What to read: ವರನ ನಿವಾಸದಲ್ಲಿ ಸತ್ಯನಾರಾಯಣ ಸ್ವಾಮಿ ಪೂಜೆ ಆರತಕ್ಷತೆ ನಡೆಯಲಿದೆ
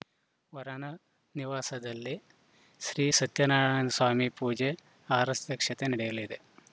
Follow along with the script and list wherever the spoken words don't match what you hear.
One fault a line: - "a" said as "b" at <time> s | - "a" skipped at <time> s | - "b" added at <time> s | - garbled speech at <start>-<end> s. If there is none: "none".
- "ಶ್ರೀ" added at 2.8 s